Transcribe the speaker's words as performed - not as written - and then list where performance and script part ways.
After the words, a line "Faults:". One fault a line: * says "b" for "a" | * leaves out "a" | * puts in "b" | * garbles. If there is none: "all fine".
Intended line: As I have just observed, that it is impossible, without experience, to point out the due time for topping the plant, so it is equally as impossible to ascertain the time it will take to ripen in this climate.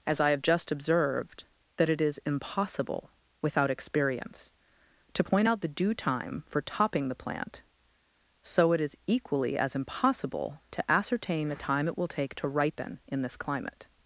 As I have just observed, that it is impossible, without experience, to point out the due time for topping the plant, so it is equally as impossible to ascertain the time it will take to ripen in this climate.
Faults:
all fine